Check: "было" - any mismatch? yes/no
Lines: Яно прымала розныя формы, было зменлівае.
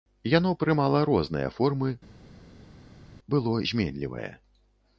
no